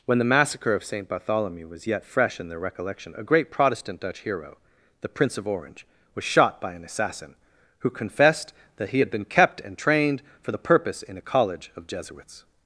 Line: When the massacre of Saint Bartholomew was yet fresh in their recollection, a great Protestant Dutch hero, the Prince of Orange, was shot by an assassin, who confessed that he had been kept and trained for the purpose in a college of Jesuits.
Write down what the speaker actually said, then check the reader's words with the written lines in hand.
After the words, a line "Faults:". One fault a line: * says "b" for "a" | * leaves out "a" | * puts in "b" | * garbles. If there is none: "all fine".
When the massacre of Saint Bartholomew was yet fresh in their recollection, a great Protestant Dutch hero, the Prince of Orange, was shot by an assassin, who confessed that he had been kept and trained for the purpose in a college of Jesuits.
Faults:
all fine